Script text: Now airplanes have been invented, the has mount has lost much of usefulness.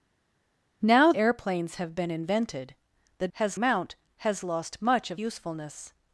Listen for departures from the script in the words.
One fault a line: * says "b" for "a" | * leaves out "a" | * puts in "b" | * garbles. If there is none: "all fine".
all fine